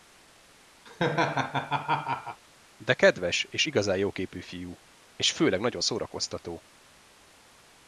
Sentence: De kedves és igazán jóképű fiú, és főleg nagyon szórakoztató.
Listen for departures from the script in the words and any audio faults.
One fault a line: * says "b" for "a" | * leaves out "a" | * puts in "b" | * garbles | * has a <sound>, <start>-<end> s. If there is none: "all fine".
* has a laugh, 0.9-2.4 s